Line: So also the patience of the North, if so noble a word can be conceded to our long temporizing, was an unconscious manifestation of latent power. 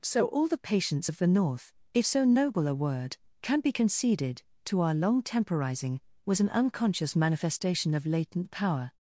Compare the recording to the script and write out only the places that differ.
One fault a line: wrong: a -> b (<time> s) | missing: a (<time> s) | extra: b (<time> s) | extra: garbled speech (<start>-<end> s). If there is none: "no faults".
wrong: also -> all (0.2 s)